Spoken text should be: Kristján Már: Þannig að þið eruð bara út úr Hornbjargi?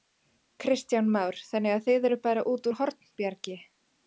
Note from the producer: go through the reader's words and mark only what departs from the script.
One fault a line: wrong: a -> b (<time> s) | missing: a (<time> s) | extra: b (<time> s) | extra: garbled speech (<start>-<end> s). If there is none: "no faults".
no faults